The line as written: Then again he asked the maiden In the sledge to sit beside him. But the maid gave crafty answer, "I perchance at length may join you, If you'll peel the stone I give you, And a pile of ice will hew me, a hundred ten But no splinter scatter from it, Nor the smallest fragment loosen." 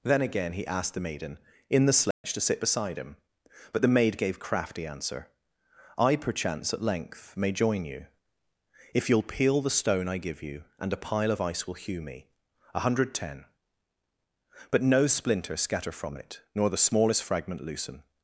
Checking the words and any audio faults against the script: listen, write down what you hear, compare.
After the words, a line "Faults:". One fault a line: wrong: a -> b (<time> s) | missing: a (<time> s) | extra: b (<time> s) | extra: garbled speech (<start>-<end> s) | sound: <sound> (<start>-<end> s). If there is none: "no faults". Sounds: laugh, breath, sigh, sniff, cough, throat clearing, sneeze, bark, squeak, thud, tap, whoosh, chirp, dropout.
Then again he asked the maiden In the sledge to sit beside him. But the maid gave crafty answer, "I perchance at length may join you, If you'll peel the stone I give you, And a pile of ice will hew me, a hundred ten But no splinter scatter from it, Nor the smallest fragment loosen."
Faults:
sound: dropout (2.1-2.2 s)